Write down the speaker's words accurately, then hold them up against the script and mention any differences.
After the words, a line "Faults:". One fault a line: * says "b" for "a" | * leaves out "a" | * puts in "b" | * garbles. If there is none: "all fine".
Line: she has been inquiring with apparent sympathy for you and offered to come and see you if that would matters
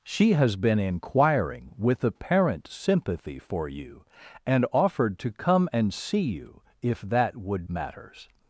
she has been inquiring with apparent sympathy for you and offered to come and see you if that would matters
Faults:
all fine